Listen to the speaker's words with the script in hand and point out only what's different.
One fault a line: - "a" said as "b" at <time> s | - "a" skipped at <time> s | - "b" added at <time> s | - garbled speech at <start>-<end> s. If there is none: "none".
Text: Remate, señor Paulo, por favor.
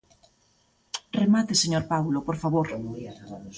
none